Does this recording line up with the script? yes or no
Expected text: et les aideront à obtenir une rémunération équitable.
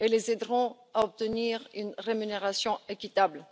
yes